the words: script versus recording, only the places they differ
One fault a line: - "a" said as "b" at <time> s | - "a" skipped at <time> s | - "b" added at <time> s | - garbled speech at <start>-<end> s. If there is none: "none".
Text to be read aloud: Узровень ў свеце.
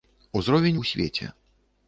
none